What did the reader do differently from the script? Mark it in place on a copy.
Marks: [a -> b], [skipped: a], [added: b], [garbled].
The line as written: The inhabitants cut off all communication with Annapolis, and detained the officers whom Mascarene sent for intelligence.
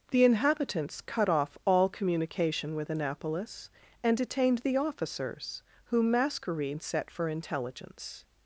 The inhabitants cut off all communication with Annapolis, and detained the officers whom Mascarene [sent -> set] for intelligence.